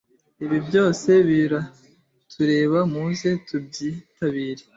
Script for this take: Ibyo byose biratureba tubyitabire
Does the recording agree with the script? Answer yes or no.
no